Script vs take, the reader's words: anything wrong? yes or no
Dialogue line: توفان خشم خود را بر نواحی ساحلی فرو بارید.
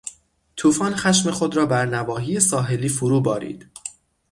no